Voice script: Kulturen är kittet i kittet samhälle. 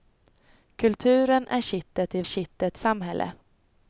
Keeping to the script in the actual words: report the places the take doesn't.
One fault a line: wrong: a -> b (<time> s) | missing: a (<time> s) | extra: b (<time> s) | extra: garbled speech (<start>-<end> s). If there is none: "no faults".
no faults